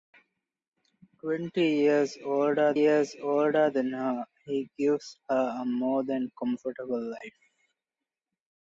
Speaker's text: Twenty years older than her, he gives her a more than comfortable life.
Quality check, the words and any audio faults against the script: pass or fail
fail